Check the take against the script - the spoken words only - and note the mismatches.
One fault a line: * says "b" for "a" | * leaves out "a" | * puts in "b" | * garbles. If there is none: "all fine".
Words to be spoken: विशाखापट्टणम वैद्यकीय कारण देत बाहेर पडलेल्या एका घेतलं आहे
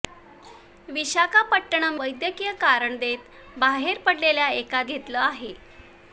all fine